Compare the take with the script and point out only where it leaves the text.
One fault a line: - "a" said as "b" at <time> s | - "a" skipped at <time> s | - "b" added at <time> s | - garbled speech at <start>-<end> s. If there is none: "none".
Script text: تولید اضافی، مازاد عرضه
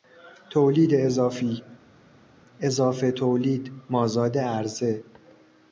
- "اضافه تولید" added at 2.6 s